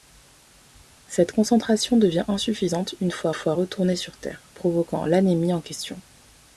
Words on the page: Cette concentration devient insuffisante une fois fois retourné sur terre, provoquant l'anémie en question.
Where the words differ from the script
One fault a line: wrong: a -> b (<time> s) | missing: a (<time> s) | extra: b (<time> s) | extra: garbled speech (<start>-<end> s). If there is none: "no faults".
no faults